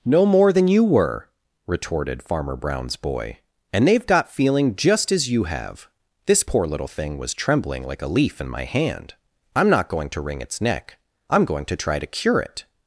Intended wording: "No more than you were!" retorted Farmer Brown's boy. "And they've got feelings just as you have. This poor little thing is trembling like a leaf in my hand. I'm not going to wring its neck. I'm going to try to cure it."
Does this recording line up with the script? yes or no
no